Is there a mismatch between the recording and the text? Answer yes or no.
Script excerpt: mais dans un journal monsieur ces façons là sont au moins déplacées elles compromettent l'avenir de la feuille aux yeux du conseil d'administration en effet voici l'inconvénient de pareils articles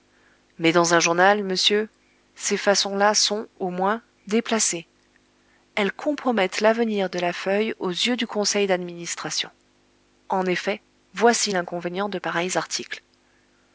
no